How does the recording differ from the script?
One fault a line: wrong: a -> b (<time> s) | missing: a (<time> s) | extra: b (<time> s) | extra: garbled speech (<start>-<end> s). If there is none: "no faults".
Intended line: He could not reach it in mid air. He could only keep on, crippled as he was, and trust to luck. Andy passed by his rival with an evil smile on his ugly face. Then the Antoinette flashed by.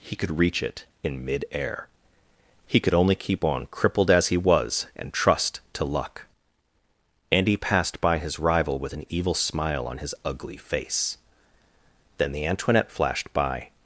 missing: not (0.4 s)